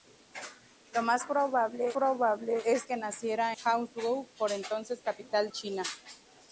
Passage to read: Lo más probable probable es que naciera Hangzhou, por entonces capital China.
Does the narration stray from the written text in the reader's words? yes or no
no